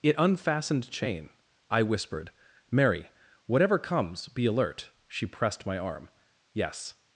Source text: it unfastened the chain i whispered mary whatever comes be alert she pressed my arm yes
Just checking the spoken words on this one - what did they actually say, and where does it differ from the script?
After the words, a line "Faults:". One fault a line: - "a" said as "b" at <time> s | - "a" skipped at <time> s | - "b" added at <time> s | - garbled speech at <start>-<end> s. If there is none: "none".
it unfastened chain i whispered mary whatever comes be alert she pressed my arm yes
Faults:
- "the" skipped at 0.9 s